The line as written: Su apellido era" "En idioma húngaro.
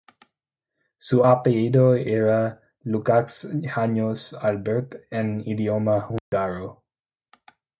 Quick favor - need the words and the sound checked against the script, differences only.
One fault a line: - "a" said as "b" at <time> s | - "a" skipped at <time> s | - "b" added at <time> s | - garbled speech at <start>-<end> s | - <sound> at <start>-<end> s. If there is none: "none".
- "Lukács János Albert" added at 2.8 s
- dropout at 6.2-6.3 s